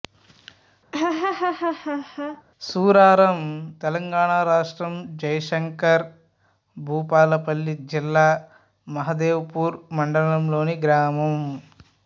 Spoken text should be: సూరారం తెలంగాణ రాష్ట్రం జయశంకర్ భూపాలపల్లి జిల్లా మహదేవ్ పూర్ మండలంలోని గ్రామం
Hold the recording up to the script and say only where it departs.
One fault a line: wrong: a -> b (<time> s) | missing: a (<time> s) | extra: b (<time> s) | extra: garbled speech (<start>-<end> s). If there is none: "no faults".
no faults